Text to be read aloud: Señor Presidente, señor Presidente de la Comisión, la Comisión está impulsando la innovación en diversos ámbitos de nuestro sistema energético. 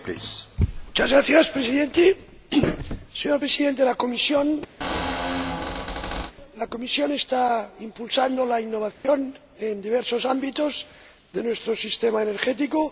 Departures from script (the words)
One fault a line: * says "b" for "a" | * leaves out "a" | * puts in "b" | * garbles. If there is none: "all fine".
all fine